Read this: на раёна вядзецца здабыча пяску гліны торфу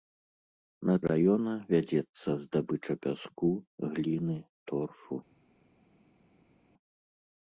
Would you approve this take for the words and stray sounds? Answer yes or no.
yes